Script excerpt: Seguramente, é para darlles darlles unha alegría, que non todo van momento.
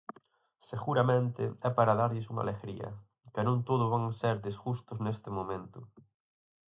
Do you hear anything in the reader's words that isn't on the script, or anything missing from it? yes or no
yes